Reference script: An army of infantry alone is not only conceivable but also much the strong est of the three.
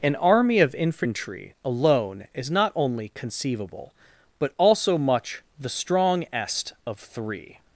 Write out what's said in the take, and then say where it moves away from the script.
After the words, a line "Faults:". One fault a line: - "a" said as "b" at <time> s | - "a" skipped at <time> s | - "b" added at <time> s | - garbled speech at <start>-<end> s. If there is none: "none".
An army of infantry alone is not only conceivable but also much the strong est of three.
Faults:
- "the" skipped at 7.0 s